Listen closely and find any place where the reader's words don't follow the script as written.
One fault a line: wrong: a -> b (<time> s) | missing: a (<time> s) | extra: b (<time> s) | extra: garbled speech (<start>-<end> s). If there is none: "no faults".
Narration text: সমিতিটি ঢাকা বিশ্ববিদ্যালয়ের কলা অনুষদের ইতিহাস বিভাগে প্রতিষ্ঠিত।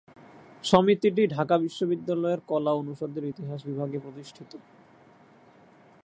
no faults